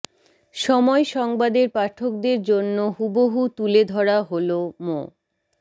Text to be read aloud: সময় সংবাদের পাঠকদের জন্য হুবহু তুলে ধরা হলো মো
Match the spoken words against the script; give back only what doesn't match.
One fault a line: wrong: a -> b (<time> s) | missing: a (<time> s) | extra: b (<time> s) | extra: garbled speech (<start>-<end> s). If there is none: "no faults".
no faults